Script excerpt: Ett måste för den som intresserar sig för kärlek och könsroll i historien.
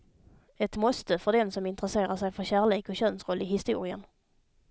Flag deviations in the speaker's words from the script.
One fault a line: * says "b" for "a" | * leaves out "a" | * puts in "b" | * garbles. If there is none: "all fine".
all fine